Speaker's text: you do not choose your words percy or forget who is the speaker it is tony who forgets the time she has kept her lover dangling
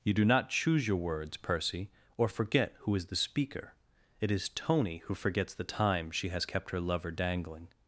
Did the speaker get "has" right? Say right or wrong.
right